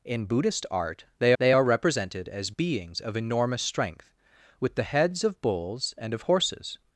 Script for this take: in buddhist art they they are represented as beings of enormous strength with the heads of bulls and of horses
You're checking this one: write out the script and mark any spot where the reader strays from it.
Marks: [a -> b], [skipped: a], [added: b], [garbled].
in buddhist art they they are represented as beings of enormous strength with the heads of bulls and of horses